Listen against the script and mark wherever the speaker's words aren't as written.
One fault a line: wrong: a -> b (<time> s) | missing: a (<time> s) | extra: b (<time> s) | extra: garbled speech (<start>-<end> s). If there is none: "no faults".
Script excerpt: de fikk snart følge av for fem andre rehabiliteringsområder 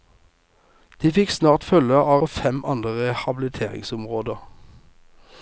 no faults